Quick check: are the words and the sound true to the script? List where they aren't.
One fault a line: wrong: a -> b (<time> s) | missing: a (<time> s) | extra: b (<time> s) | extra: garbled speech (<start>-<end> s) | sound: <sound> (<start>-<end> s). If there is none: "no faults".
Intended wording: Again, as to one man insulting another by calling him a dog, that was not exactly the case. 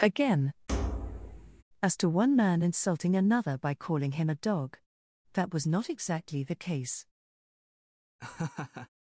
sound: thud (0.7-1.6 s)
sound: laugh (8.2-8.9 s)